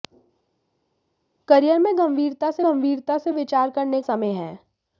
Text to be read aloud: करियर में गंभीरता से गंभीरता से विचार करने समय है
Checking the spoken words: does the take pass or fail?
pass